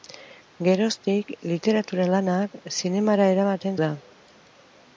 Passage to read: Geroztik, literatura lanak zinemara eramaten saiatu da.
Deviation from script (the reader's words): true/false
true